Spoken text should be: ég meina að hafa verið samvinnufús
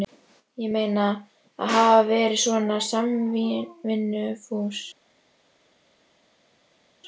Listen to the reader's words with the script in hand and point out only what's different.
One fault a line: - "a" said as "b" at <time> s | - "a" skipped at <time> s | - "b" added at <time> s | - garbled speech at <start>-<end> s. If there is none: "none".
- "svona" added at 2.4 s